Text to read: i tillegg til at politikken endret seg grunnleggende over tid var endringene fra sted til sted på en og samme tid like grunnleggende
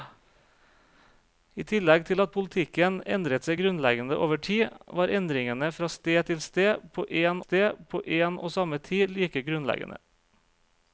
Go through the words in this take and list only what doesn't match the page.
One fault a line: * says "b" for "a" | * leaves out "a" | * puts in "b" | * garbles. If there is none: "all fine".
* puts in "sted på en"